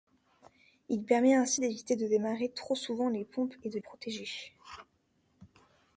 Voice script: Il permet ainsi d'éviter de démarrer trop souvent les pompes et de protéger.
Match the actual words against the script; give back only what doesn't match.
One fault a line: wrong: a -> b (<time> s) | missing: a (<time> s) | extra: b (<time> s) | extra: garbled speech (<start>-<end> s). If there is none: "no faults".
no faults